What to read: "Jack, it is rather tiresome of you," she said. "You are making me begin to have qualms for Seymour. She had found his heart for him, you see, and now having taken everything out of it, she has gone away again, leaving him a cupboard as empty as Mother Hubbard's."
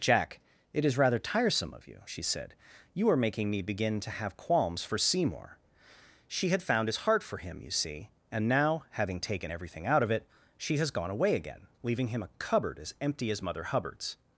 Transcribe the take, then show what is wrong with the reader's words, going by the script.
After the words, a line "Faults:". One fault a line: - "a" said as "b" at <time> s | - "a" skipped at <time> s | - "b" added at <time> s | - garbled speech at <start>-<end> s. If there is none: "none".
"Jack, it is rather tiresome of you," she said. "You are making me begin to have qualms for Seymour. She had found his heart for him, you see, and now having taken everything out of it, she has gone away again, leaving him a cupboard as empty as Mother Hubbard's."
Faults:
none